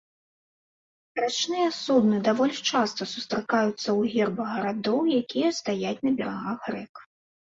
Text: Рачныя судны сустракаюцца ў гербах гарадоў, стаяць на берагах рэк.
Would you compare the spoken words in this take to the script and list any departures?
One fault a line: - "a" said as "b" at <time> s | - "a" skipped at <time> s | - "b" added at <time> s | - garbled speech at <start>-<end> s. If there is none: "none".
- "даволі часта" added at 2.3 s
- "якія" added at 5.2 s